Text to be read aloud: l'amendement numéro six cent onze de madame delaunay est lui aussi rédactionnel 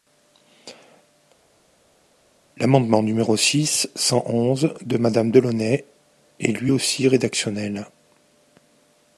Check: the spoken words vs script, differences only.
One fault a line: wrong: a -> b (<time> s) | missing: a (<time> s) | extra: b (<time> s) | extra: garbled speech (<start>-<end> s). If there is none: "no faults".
no faults